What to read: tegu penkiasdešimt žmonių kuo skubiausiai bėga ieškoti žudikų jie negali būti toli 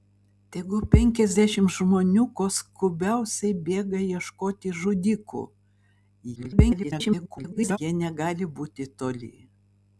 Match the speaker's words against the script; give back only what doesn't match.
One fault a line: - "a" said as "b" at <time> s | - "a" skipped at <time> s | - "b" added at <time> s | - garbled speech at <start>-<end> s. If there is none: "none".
- garbled speech at 6.4-7.8 s